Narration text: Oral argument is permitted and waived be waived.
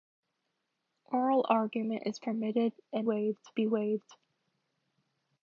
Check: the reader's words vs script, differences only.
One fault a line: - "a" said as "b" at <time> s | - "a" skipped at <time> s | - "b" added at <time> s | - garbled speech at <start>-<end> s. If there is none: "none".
none